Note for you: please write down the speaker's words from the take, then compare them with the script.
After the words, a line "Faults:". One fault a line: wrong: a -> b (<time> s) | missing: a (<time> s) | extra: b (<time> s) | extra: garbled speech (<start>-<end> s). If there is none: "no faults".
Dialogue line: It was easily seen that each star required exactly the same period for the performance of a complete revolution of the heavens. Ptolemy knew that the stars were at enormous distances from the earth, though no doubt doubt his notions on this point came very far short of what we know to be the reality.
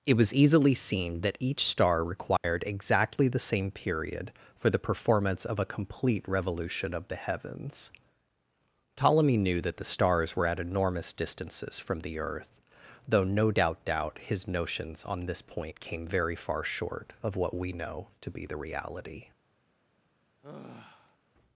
It was easily seen that each star required exactly the same period for the performance of a complete revolution of the heavens. Ptolemy knew that the stars were at enormous distances from the earth, though no doubt doubt his notions on this point came very far short of what we know to be the reality.
Faults:
no faults